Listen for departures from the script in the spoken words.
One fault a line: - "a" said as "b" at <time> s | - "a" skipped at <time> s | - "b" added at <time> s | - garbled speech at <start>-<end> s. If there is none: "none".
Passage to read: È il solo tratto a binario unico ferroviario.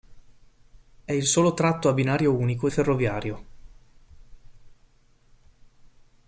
none